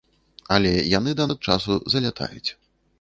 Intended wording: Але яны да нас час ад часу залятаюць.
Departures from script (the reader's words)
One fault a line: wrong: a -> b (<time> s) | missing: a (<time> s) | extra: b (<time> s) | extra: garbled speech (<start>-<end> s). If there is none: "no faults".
missing: нас час (1.3 s)